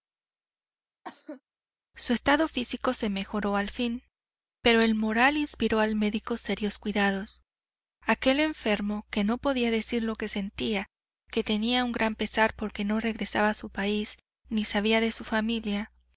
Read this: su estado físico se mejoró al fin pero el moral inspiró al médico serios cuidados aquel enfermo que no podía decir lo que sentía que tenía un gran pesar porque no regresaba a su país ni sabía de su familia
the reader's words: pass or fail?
pass